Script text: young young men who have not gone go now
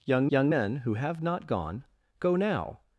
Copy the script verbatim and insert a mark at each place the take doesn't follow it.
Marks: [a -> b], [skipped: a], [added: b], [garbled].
young young men who have not gone go now